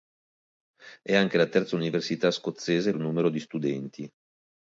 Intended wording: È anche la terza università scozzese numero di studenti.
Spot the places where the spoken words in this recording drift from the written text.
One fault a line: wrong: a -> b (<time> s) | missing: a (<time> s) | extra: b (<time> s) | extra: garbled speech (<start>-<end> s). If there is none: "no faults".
no faults